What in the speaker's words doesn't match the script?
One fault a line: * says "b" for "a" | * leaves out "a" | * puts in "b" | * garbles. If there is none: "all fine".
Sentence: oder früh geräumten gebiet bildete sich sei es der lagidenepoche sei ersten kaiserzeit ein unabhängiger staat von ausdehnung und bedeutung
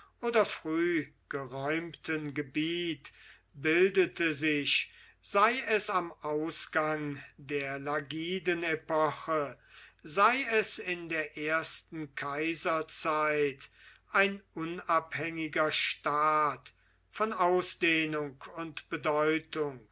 * puts in "am ausgang"
* puts in "es in der"